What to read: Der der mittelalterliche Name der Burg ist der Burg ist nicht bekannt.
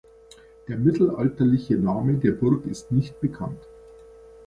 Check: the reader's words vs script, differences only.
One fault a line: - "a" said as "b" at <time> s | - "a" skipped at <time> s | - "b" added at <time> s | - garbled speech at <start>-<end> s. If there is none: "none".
- "der" skipped at 0.8 s
- "der Burg ist" skipped at 2.9 s